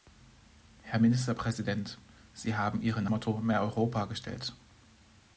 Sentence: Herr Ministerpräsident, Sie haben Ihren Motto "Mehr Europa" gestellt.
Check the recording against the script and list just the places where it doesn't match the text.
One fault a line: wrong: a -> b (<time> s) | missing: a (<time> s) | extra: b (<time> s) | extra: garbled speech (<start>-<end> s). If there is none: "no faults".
no faults